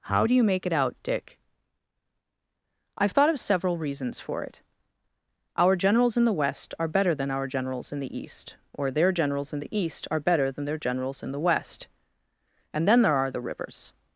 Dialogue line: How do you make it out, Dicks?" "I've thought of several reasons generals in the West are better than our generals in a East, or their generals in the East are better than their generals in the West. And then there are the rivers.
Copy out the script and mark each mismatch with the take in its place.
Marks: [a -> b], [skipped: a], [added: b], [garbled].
How do you make it out, [Dicks?" -> Dick] "I've thought of several reasons [added: for it Our] generals in the West are better than our generals in [a -> the] East, or their generals in the East are better than their generals in the West. And then there are the rivers.